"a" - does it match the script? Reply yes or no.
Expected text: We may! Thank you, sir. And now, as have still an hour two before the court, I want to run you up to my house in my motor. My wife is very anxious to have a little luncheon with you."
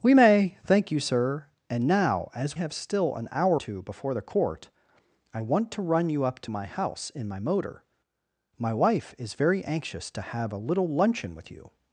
yes